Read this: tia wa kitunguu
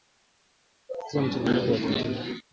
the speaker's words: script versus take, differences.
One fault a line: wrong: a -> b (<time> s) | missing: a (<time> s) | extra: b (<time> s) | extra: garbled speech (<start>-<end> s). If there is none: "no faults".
extra: mchanganyiko (1.2 s)